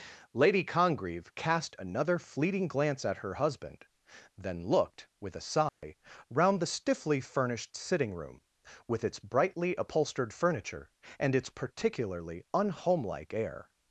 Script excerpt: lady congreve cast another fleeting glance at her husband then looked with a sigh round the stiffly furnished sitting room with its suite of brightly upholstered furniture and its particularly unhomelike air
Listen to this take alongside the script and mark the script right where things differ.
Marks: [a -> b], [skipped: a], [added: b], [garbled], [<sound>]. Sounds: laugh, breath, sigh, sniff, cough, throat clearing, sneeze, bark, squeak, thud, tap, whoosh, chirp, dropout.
lady congreve cast another fleeting glance at her husband then looked with a sigh [dropout] round the stiffly furnished sitting room with its [skipped: suite of] brightly upholstered furniture and its particularly unhomelike air